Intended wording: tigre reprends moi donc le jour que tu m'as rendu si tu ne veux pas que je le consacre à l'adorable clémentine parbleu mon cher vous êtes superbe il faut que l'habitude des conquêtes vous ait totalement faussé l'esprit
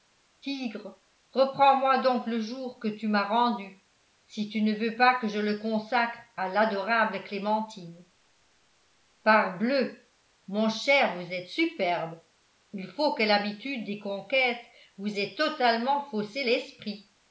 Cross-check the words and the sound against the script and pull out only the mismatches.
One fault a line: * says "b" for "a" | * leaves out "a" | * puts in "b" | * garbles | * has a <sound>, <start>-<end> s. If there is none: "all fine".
all fine